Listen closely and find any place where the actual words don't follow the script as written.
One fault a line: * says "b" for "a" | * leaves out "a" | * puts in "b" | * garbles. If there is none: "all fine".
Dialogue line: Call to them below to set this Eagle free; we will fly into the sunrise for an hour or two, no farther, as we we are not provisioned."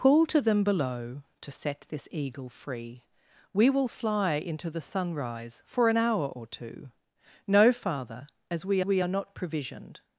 all fine